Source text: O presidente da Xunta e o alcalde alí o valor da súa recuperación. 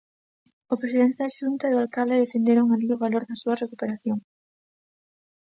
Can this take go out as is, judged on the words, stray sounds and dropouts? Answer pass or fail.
fail